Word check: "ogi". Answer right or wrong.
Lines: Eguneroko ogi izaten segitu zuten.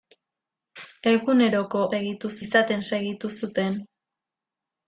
wrong